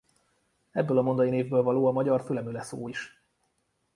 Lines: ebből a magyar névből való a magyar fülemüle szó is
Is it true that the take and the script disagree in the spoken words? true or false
true